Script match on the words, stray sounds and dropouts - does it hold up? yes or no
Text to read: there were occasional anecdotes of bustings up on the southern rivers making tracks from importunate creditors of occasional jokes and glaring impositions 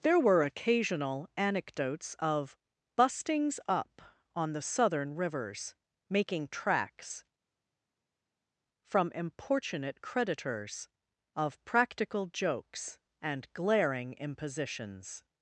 no